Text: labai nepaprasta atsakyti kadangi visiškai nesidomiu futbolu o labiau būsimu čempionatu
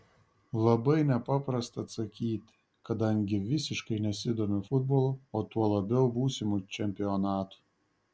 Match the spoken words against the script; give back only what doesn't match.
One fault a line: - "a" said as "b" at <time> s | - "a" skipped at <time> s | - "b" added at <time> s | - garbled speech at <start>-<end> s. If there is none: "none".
- "tuo" added at 5.5 s